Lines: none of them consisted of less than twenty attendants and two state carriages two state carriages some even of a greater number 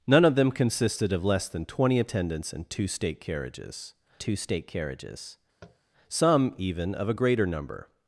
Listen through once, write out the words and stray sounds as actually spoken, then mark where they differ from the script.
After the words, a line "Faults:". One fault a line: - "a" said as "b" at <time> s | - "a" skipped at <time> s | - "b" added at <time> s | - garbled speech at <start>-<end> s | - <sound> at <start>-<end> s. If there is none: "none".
none of them consisted of less than twenty attendants and two state carriages two state carriages some even of a greater number
Faults:
- tap at 5.6-5.8 s